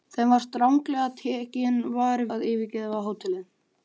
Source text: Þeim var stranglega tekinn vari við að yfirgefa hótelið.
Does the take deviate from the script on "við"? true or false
true